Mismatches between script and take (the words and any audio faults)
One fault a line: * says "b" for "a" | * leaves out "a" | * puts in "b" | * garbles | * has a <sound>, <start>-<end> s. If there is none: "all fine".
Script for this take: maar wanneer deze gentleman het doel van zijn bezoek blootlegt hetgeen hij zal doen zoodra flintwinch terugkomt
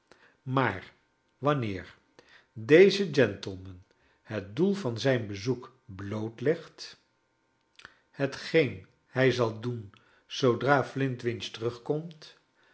all fine